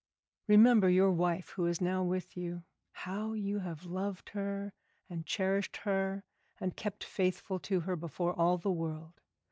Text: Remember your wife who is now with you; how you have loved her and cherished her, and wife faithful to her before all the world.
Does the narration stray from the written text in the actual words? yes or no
yes